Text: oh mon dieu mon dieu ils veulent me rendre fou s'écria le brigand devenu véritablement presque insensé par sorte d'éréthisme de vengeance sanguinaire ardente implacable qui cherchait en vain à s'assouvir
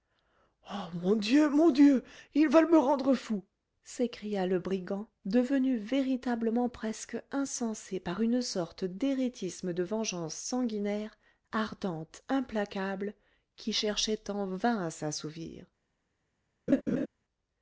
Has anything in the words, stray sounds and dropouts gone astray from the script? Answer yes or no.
yes